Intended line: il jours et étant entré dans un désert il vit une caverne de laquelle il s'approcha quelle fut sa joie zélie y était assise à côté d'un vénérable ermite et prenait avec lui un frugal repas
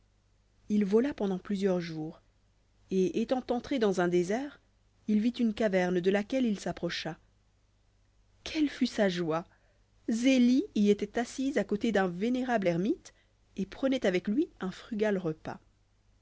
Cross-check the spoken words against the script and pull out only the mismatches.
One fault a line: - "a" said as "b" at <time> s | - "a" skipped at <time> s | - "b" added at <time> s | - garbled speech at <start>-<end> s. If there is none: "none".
- "vola pendant plusieurs" added at 0.8 s